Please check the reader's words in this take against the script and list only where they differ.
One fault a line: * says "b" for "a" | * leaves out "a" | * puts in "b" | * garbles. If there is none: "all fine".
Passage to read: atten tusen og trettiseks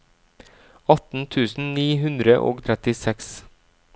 * puts in "ni hundre"